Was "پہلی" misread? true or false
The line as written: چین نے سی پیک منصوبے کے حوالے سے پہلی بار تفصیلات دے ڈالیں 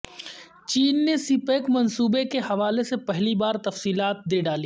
false